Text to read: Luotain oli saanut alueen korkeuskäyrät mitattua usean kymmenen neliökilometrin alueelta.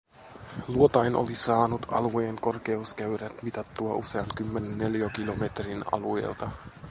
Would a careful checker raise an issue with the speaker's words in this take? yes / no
no